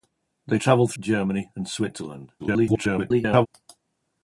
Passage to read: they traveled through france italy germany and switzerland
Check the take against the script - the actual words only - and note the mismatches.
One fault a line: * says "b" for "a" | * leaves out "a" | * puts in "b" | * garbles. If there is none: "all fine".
* leaves out "through france italy"
* garbles